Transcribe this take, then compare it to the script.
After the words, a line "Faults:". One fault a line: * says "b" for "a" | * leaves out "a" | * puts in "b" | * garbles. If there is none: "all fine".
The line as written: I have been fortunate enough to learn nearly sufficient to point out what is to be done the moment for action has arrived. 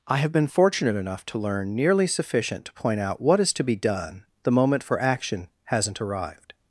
I have been fortunate enough to learn nearly sufficient to point out what is to be done the moment for action hasn't arrived.
Faults:
* says "hasn't" for "has"